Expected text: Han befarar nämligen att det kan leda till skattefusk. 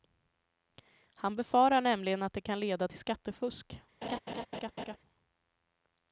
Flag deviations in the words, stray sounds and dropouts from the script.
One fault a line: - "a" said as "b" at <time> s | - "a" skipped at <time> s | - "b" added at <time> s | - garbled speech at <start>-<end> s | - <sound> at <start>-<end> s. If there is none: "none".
- laugh at 4.0-5.0 s